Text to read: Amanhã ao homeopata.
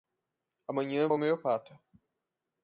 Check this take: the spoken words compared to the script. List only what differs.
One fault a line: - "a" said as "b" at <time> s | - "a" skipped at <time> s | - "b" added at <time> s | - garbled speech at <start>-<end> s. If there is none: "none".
none